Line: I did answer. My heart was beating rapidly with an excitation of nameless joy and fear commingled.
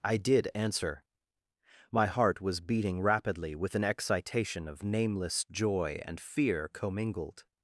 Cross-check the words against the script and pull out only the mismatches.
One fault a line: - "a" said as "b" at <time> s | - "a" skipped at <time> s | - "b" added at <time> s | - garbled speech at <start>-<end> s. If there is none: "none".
none